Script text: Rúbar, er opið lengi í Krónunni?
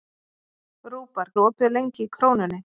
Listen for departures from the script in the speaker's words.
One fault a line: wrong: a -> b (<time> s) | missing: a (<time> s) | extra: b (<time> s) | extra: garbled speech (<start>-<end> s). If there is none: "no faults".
no faults